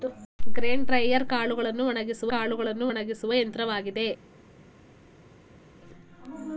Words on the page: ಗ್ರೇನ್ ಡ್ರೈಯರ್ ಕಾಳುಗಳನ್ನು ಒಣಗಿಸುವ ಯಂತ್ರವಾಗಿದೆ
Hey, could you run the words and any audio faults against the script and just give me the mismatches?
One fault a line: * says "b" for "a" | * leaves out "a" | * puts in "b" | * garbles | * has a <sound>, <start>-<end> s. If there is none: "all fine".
* puts in "ಕಾಳುಗಳನ್ನು ಒಣಗಿಸುವ"